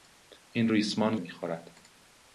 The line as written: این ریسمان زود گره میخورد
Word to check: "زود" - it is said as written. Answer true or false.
false